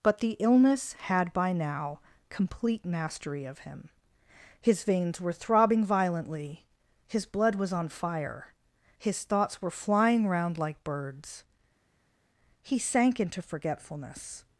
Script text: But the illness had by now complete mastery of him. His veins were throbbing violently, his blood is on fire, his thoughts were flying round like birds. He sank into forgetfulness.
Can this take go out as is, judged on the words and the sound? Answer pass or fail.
fail